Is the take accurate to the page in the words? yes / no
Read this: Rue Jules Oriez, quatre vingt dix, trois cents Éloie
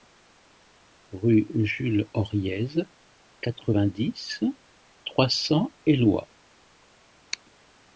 yes